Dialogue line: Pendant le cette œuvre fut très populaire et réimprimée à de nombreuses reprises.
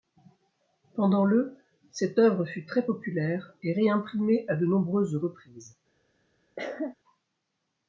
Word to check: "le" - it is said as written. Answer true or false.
true